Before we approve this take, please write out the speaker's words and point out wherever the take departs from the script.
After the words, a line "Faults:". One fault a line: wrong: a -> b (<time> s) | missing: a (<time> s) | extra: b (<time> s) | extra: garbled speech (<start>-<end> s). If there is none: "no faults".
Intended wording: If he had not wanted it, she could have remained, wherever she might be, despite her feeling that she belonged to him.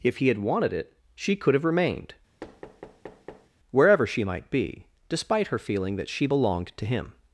If he had wanted it, she could have remained, wherever she might be, despite her feeling that she belonged to him.
Faults:
missing: not (0.4 s)